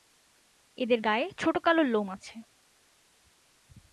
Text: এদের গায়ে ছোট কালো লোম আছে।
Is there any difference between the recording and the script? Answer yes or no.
no